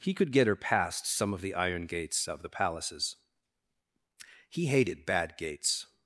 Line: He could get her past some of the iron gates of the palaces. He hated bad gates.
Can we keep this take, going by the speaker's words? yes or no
yes